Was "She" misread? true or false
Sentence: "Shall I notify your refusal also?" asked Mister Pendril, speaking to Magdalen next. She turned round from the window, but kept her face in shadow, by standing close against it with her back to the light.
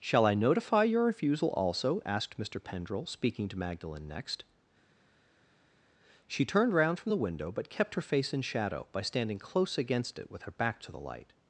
false